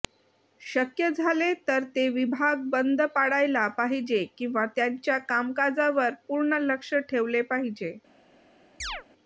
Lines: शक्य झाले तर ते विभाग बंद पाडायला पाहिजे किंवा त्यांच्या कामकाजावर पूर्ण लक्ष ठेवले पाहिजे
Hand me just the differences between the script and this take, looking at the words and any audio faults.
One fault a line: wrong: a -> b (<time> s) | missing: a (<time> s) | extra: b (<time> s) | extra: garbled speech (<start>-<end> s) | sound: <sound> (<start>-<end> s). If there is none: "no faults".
sound: chirp (8.8-9.0 s)